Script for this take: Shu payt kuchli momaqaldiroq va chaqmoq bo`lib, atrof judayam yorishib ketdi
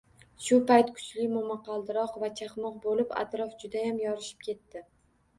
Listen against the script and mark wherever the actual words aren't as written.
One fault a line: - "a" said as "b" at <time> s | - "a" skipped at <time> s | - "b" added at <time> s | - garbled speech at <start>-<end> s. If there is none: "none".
none